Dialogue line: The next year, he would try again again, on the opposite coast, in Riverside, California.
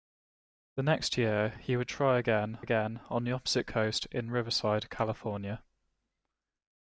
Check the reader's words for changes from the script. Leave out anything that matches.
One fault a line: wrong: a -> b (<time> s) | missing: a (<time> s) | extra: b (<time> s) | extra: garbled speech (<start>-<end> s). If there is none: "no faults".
no faults